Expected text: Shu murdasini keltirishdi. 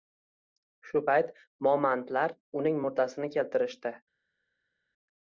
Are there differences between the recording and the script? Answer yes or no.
yes